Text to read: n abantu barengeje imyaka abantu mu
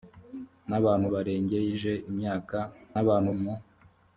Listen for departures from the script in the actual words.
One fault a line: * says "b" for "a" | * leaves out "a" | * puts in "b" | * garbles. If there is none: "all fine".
all fine